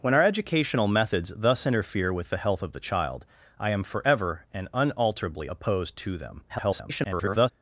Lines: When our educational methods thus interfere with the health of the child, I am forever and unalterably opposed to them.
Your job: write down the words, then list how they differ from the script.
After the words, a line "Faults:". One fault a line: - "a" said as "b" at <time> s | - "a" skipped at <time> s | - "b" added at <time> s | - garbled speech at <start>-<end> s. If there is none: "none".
When our educational methods thus interfere with the health of the child, I am forever and unalterably opposed to them. [garbled]
Faults:
- garbled speech at 6.5-7.5 s